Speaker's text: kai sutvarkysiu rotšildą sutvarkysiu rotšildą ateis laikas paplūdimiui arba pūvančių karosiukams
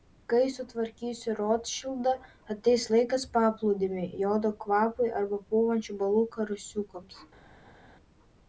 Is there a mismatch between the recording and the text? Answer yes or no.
yes